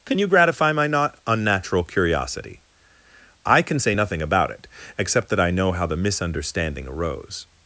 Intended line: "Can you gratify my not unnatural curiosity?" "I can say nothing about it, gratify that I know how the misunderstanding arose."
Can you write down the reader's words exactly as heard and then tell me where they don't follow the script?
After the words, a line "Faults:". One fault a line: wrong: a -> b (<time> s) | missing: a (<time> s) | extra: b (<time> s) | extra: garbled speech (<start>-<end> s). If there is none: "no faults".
"Can you gratify my not unnatural curiosity?" "I can say nothing about it, except that I know how the misunderstanding arose."
Faults:
wrong: gratify -> except (5.0 s)